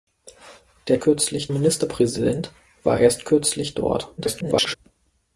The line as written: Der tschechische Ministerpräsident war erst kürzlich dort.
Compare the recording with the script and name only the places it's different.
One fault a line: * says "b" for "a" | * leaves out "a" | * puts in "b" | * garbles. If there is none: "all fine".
* says "kürzlich" for "tschechische"
* garbles